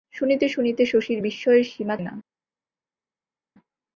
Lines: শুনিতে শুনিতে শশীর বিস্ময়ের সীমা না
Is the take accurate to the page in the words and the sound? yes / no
yes